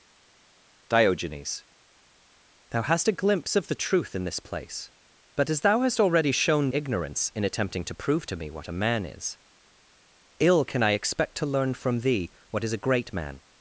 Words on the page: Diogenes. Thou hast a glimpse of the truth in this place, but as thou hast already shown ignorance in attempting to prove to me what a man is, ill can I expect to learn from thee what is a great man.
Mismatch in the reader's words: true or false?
false